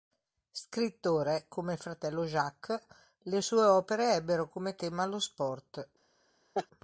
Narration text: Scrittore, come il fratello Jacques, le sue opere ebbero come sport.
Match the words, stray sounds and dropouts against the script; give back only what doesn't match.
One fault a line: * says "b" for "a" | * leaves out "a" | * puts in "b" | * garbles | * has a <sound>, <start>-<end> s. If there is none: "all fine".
* puts in "tema lo"
* has a laugh, 6.5-6.7 s